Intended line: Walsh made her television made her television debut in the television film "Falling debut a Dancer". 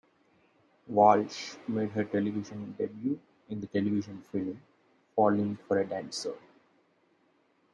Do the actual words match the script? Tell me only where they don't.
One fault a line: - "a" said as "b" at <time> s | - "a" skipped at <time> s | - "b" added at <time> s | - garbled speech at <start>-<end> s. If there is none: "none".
- "made her television" skipped at 2.7 s
- "debut" said as "for" at 5.6 s